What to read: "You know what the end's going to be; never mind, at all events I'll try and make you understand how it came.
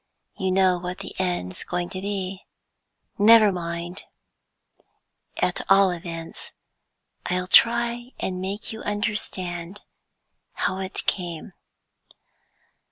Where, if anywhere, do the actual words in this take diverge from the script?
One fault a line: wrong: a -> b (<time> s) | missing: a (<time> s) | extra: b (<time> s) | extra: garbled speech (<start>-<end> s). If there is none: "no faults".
no faults